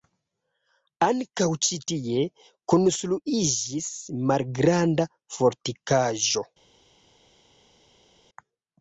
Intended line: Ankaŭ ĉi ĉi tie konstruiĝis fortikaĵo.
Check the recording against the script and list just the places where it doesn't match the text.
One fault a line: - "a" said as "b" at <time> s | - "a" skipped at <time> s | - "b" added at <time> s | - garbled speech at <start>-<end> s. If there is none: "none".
- "ĉi" skipped at 1.8 s
- "malgranda" added at 4.3 s